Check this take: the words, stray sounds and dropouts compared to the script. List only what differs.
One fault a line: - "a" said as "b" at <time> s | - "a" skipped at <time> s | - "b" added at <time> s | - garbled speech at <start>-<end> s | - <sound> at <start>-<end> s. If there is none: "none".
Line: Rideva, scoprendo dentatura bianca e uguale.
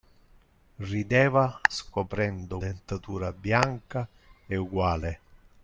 none